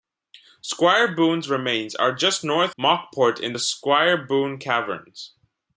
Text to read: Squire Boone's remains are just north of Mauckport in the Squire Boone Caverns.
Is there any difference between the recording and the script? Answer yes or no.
yes